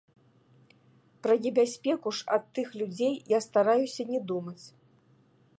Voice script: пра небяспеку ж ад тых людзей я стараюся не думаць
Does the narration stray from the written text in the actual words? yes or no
no